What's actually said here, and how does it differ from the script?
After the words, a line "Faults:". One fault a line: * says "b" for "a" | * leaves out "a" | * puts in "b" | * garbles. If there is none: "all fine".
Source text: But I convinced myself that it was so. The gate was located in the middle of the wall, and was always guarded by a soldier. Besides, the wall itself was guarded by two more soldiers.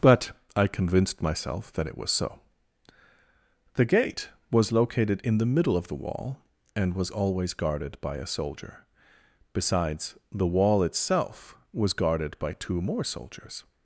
But I convinced myself that it was so. The gate was located in the middle of the wall, and was always guarded by a soldier. Besides, the wall itself was guarded by two more soldiers.
Faults:
all fine